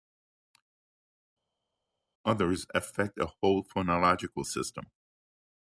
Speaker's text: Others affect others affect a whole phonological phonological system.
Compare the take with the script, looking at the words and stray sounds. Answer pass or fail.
fail